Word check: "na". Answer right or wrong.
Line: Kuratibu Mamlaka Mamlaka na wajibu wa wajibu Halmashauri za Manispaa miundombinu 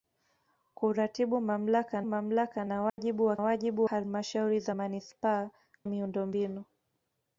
right